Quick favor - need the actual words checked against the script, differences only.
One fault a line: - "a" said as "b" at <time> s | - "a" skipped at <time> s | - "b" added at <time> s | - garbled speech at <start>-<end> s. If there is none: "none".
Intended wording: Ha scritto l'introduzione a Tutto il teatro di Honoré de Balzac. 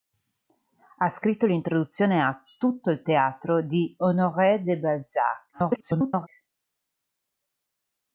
- garbled speech at 5.5-6.3 s